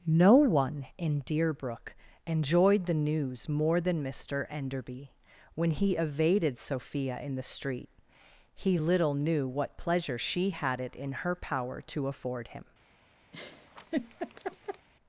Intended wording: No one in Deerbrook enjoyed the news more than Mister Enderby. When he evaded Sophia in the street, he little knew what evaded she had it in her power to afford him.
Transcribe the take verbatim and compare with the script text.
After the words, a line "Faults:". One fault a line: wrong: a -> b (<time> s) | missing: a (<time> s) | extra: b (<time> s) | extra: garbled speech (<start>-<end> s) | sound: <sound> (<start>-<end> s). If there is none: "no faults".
No one in Deerbrook enjoyed the news more than Mister Enderby. When he evaded Sophia in the street, he little knew what pleasure she had it in her power to afford him.
Faults:
wrong: evaded -> pleasure (9.8 s)
sound: laugh (13.3-14.9 s)